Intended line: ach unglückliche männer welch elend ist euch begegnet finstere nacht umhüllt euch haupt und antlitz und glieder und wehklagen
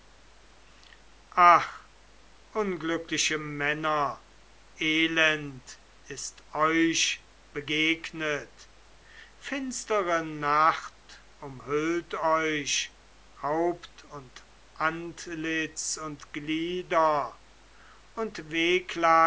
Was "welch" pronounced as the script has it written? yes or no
no